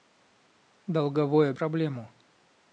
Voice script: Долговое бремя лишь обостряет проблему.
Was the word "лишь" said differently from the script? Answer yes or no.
yes